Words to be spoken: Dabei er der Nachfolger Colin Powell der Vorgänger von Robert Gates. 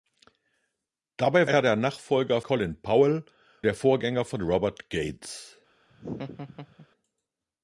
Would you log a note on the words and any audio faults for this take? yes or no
yes